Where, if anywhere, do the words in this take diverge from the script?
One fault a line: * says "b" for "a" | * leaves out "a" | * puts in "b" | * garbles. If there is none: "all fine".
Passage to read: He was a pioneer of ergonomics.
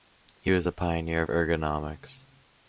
all fine